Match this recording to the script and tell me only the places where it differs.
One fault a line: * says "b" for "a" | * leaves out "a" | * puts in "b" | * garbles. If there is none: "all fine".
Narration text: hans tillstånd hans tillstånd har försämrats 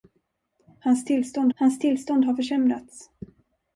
all fine